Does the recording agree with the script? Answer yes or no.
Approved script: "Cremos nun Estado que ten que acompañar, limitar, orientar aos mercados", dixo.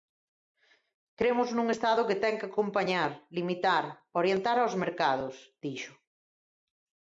yes